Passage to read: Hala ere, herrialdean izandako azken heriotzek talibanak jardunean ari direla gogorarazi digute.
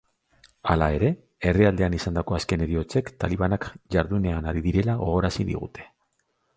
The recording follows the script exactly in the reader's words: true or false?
true